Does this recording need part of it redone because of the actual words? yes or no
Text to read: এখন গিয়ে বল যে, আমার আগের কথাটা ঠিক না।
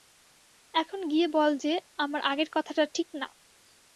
no